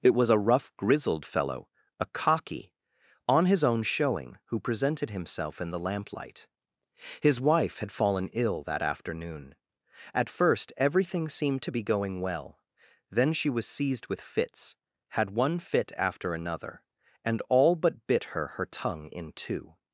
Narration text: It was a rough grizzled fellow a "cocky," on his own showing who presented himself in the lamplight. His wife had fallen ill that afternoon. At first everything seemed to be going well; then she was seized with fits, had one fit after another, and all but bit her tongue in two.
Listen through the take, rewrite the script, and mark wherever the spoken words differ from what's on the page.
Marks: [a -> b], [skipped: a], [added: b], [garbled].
It was a rough grizzled fellow a "cocky," on his own showing who presented himself in the lamplight. His wife had fallen ill that afternoon. At first everything seemed to be going well; then she was seized with fits, had one fit after another, and all but bit her [added: her] tongue in two.